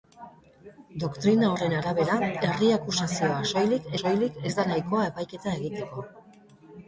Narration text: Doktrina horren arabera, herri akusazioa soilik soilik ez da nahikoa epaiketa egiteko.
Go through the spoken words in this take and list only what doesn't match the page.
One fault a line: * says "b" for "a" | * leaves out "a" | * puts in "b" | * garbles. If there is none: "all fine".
all fine